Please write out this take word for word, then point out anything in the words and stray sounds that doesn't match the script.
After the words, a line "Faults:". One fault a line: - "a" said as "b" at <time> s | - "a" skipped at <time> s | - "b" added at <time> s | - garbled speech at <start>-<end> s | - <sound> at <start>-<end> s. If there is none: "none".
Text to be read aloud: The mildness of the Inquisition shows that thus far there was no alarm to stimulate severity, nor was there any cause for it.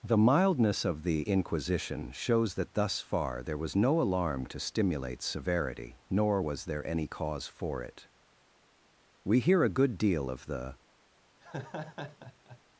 The mildness of the Inquisition shows that thus far there was no alarm to stimulate severity, nor was there any cause for it. We hear a good deal of the
Faults:
- "We hear a good deal of the" added at 9.2 s
- laugh at 11.4-12.6 s